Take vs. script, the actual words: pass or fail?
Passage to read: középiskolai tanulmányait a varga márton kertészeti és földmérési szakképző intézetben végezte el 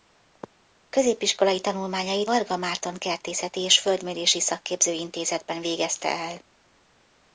fail